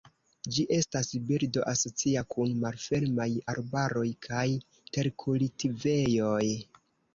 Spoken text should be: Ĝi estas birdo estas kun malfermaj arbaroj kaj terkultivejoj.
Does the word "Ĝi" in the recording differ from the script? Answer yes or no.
no